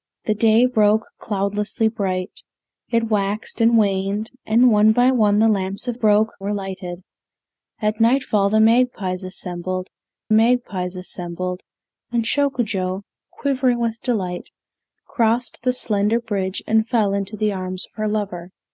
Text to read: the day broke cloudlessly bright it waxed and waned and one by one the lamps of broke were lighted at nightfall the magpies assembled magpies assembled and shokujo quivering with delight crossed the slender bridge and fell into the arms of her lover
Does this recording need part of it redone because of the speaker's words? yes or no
no